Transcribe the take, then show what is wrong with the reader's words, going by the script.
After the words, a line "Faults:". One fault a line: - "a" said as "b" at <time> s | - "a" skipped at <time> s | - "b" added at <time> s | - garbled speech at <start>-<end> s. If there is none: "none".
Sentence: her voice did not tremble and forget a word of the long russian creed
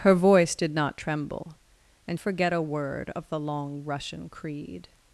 her voice did not tremble and forget a word of the long russian creed
Faults:
none